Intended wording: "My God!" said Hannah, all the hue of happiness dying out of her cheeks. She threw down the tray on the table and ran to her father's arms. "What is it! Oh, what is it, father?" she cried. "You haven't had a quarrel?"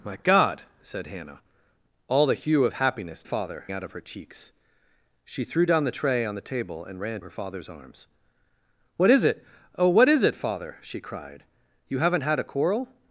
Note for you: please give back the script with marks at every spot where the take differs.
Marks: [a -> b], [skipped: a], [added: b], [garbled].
"My God!" said Hannah, all the hue of happiness [dying -> father] out of her cheeks. She threw down the tray on the table and ran [skipped: to] her father's arms. "What is it! Oh, what is it, father?" she cried. "You haven't had a quarrel?"